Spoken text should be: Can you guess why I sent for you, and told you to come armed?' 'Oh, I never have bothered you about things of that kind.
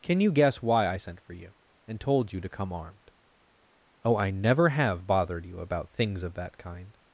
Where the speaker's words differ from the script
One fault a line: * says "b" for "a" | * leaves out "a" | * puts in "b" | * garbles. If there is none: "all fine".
all fine